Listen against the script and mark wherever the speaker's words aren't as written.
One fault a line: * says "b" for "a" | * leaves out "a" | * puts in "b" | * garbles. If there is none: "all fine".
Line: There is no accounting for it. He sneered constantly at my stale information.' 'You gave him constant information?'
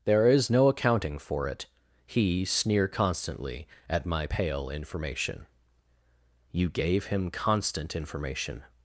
* says "sneer" for "sneered"
* says "pale" for "stale"